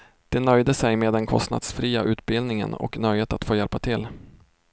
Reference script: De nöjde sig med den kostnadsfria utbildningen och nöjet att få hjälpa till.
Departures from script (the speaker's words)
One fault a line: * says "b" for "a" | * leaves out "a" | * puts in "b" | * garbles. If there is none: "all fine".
all fine